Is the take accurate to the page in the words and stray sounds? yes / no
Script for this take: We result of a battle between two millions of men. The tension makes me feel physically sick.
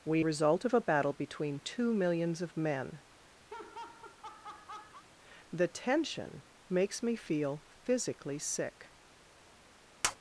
no